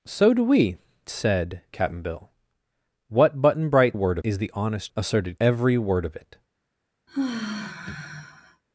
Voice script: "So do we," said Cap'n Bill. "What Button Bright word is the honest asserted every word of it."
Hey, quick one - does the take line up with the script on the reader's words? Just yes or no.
yes